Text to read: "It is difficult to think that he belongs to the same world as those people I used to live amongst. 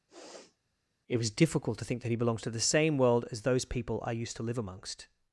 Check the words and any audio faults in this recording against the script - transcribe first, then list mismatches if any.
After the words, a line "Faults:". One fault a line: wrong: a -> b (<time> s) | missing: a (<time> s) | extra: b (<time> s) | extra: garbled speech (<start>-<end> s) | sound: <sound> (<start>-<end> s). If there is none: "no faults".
"It was difficult to think that he belongs to the same world as those people I used to live amongst.
Faults:
sound: sniff (0.1-0.6 s)
wrong: is -> was (1.2 s)